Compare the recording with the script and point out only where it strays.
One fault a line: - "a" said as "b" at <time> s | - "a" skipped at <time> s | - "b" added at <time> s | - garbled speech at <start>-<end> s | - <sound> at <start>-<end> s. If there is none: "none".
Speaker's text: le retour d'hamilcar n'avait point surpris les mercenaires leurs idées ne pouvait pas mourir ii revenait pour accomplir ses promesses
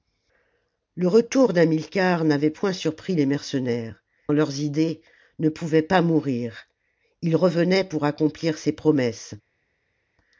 none